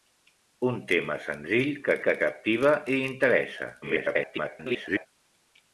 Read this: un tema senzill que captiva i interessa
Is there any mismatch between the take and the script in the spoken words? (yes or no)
yes